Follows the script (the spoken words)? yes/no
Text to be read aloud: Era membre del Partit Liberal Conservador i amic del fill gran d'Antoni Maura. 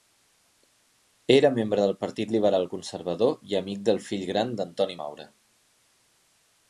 yes